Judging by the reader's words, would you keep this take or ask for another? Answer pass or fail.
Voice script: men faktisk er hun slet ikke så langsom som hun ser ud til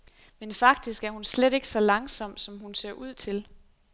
pass